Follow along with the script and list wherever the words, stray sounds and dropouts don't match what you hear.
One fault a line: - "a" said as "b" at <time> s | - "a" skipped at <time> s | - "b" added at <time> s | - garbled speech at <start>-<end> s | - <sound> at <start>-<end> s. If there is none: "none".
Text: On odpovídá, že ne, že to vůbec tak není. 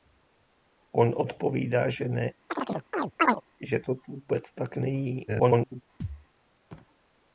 - chirp at 2.5-3.4 s
- garbled speech at 5.3-5.8 s
- thud at 6.0-6.3 s